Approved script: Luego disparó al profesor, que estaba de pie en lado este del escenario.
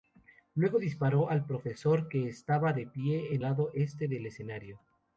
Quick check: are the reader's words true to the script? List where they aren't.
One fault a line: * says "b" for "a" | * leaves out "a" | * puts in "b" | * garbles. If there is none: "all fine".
all fine